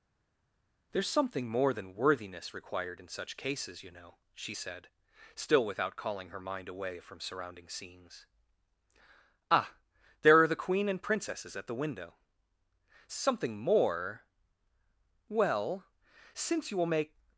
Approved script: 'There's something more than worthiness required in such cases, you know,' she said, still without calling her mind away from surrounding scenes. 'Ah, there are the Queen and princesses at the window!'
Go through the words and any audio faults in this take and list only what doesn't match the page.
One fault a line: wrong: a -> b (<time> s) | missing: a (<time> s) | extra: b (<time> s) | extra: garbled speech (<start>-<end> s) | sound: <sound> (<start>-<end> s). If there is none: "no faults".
extra: Something more Well since you will make (13.1 s)